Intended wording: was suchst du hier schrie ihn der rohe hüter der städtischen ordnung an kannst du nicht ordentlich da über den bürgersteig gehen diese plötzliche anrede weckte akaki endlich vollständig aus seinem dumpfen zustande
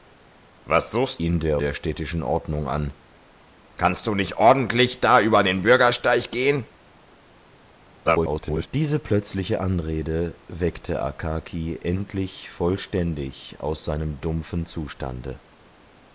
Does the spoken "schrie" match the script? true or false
false